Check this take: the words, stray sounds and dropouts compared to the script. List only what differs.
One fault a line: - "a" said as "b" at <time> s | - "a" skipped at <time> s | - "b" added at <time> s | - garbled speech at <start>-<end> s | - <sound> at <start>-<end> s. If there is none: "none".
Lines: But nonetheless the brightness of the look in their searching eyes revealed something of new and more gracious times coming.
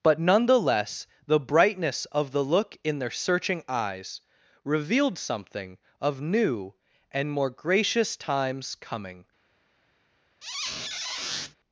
- squeak at 10.4-11.6 s